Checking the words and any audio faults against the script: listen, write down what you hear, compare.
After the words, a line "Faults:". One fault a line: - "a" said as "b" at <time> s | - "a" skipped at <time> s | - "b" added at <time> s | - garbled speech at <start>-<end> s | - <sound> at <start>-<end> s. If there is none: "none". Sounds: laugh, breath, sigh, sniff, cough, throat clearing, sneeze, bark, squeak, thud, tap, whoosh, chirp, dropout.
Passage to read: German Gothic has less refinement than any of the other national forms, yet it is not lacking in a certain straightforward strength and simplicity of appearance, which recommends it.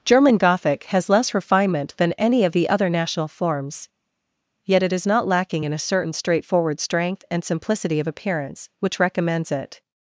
German Gothic has less refinement than any of the other national forms, yet it is not lacking in a certain straightforward strength and simplicity of appearance, which recommends it.
Faults:
none